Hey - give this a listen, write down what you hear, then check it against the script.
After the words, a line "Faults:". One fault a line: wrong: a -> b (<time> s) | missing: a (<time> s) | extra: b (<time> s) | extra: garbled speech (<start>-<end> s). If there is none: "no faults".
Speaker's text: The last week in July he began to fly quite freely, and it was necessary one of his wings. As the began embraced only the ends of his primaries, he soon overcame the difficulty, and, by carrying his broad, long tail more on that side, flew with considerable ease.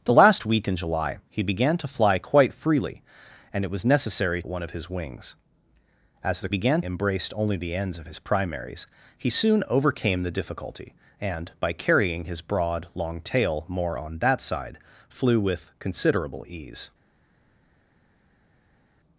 The last week in July he began to fly quite freely, and it was necessary one of his wings. As the began embraced only the ends of his primaries, he soon overcame the difficulty, and, by carrying his broad, long tail more on that side, flew with considerable ease.
Faults:
no faults